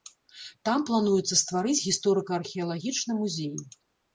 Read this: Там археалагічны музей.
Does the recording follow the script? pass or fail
fail